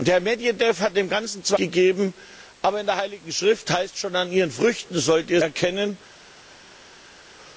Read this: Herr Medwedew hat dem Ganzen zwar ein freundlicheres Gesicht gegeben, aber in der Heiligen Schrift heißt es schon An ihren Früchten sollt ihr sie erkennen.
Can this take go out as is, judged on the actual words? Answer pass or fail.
fail